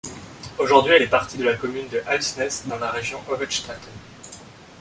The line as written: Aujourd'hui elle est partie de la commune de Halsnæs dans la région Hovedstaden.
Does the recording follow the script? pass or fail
pass